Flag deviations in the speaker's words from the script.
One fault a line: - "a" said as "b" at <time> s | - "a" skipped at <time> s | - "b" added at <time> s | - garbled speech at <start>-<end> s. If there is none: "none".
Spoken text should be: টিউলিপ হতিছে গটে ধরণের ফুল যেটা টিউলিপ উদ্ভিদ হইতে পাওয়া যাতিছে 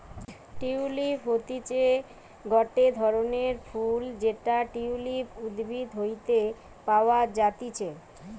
none